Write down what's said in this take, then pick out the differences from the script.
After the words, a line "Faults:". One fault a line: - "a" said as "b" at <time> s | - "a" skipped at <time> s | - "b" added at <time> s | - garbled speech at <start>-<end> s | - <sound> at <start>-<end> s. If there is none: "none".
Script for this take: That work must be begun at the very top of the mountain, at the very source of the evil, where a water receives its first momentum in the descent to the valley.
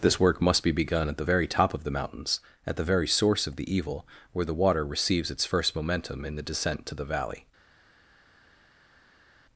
This work must be begun at the very top of the mountains, at the very source of the evil, where the water receives its first momentum in the descent to the valley.
Faults:
- "That" said as "This" at 0.0 s
- "mountain" said as "mountains" at 1.9 s
- "a" said as "the" at 4.4 s